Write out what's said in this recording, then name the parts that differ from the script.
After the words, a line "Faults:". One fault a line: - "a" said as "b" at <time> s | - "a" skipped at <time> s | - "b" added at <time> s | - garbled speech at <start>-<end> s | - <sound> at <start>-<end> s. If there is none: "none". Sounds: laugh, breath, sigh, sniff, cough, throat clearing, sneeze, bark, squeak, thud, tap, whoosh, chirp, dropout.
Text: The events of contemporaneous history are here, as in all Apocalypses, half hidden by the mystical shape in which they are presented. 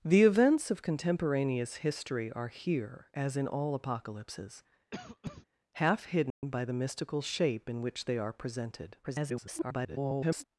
The events of contemporaneous history are here, as in all Apocalypses, half hidden by the mystical shape in which they are presented. [garbled]
Faults:
- cough at 4.9-5.5 s
- dropout at 6.3-6.4 s
- garbled speech at 9.0-10.4 s